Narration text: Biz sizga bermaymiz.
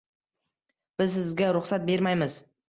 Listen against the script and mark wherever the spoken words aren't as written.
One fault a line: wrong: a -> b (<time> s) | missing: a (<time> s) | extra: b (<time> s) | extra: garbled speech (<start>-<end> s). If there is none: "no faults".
extra: ruxsat (1.5 s)